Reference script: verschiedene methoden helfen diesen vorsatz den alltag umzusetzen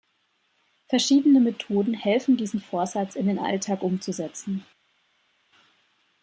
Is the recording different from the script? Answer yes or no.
yes